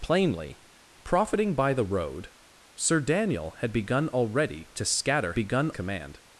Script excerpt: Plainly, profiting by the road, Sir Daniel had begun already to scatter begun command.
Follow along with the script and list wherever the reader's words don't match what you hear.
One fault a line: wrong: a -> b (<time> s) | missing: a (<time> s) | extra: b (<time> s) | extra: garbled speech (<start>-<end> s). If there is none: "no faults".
no faults